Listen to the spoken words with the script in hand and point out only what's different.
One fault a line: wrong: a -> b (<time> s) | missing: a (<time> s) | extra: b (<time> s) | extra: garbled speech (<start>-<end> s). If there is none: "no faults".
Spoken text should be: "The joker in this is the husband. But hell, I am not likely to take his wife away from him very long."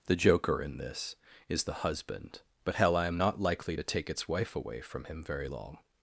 wrong: his -> its (4.1 s)